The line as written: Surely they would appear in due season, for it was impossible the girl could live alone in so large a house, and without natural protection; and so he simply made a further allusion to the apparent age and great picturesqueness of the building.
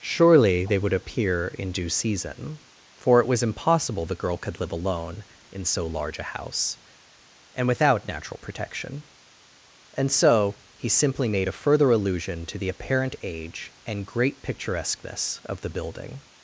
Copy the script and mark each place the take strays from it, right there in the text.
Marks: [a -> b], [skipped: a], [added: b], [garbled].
Surely they would appear in due season, for it was impossible the girl could live alone in so large a house, and without natural protection; and so he simply made a further allusion to the apparent age and great picturesqueness of the building.